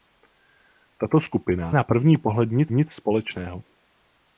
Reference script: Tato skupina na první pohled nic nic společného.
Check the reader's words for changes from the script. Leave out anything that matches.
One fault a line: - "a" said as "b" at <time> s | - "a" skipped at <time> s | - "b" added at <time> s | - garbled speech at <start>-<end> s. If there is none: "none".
none